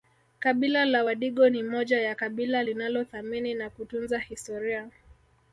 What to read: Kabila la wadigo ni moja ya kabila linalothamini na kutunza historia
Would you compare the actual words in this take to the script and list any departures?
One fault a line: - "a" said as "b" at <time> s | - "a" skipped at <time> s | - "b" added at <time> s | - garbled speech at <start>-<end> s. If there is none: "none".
none